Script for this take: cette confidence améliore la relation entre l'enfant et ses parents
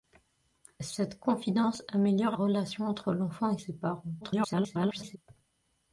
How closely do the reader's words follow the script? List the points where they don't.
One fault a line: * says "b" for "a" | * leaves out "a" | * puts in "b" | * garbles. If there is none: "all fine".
* leaves out "la"
* garbles